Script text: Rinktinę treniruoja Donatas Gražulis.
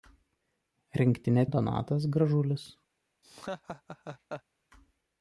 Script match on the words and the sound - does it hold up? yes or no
no